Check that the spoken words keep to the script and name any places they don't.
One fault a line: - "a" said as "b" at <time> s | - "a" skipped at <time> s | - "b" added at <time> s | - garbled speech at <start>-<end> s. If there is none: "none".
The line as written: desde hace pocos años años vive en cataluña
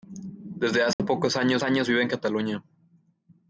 none